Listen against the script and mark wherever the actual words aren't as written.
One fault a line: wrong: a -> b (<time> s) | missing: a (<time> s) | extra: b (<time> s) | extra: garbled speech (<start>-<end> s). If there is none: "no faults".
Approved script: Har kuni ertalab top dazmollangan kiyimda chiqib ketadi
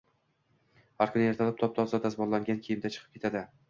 extra: toza (1.8 s)